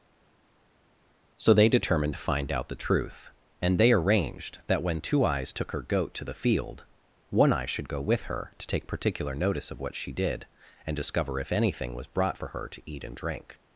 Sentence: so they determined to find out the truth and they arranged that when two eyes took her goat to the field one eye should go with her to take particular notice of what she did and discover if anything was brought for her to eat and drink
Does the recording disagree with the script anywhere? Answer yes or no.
no